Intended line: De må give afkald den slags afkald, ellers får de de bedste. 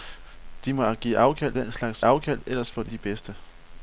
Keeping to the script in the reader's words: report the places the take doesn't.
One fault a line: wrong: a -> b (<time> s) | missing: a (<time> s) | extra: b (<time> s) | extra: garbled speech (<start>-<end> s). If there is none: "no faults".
no faults